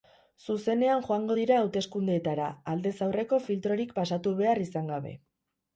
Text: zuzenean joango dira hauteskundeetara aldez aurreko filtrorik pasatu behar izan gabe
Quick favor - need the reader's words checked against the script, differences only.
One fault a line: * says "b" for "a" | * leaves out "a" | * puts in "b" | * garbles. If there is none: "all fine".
all fine